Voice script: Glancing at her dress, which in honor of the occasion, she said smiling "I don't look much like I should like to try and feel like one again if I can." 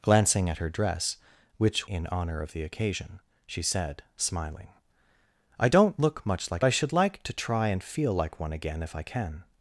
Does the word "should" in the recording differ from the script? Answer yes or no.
no